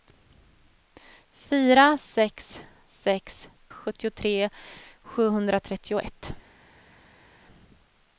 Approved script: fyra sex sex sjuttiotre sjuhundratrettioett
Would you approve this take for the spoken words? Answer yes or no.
yes